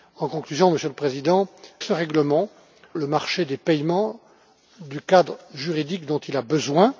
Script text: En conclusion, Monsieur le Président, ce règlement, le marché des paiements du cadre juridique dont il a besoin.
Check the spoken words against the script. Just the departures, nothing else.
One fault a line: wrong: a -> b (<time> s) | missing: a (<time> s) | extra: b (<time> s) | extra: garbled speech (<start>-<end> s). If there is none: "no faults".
no faults